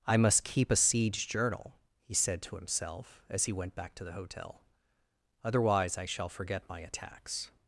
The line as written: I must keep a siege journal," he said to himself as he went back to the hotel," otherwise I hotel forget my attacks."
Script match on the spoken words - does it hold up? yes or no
no